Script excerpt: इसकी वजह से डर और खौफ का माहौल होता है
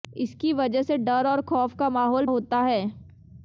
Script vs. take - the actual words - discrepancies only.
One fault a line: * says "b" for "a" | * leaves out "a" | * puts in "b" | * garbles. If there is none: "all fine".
all fine